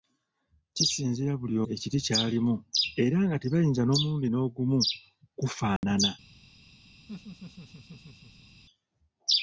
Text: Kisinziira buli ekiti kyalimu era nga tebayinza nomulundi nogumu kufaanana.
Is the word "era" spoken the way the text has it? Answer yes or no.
yes